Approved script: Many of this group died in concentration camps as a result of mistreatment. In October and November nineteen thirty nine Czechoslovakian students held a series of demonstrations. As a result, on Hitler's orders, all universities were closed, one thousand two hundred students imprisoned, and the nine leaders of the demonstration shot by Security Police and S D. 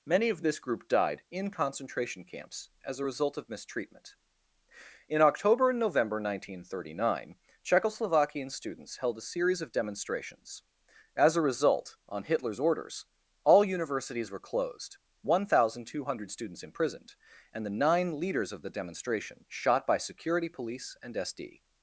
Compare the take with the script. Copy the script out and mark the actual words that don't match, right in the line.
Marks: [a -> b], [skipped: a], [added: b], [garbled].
Many of this group died in concentration camps as a result of mistreatment. In October and November nineteen thirty nine Czechoslovakian students held a series of demonstrations. As a result, on Hitler's orders, all universities were closed, one thousand two hundred students imprisoned, and the nine leaders of the demonstration shot by Security Police and S D.